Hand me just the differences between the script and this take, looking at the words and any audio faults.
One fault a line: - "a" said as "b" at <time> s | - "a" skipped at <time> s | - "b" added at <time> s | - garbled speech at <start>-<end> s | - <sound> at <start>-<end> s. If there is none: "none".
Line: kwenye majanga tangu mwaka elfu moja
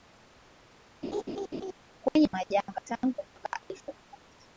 - laugh at 1.0-1.7 s